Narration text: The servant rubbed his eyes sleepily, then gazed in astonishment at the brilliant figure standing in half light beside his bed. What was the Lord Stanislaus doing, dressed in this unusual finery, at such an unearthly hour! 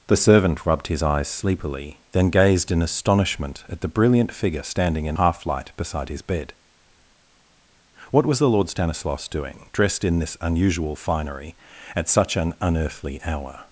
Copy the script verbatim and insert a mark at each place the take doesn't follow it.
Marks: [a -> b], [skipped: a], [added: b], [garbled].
The servant rubbed his eyes sleepily, then gazed in astonishment at the brilliant figure standing in half light beside his bed. What was the Lord Stanislaus doing, dressed in this unusual finery, at such an unearthly hour!